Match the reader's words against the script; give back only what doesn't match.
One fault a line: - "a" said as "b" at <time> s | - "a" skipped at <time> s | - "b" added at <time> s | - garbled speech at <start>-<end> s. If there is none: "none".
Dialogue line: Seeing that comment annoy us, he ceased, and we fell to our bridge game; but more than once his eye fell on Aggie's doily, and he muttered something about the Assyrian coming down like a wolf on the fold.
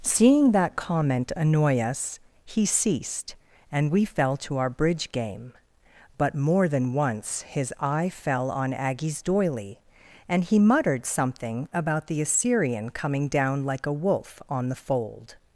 none